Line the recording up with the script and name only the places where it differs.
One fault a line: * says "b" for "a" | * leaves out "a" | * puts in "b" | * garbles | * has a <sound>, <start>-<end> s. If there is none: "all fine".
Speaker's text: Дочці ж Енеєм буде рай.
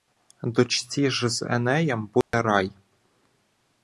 * puts in "з"
* has a dropout, 2.2-2.3 s